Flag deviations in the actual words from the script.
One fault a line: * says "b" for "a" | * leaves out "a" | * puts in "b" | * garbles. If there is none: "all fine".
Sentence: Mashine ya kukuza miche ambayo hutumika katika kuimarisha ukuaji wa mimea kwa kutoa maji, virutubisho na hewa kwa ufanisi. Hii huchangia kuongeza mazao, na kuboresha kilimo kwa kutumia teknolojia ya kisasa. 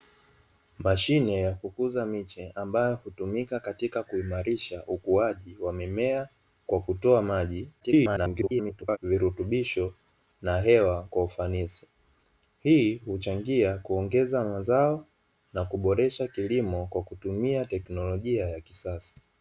* garbles